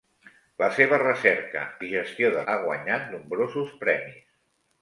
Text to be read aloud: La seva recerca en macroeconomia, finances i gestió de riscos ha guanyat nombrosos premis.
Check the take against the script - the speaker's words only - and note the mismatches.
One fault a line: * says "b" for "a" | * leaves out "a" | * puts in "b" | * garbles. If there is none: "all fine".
* leaves out "en macroeconomia finances"
* leaves out "riscos"